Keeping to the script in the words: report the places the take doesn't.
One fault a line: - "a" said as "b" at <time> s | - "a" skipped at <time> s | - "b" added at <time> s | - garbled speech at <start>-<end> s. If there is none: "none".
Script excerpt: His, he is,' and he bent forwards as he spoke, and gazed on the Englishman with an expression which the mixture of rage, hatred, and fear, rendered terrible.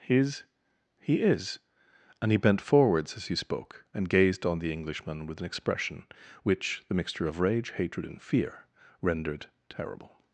none